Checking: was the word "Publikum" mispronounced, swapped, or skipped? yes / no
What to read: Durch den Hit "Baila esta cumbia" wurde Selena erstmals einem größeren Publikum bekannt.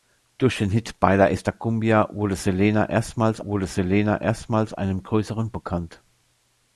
yes